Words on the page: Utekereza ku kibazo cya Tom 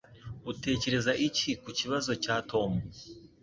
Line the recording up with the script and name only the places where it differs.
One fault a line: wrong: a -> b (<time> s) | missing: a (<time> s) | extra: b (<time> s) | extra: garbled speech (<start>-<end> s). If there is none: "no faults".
extra: iki (1.3 s)